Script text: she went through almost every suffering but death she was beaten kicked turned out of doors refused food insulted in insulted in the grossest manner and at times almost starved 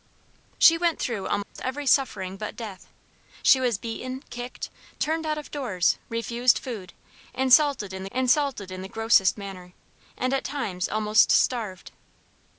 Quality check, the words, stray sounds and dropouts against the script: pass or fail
fail